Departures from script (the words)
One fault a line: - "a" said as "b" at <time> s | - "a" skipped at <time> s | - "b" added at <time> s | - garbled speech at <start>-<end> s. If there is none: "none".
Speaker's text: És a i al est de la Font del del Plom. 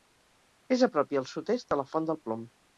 - "prop" added at 1.0 s
- "sud" added at 1.3 s
- "del" skipped at 2.3 s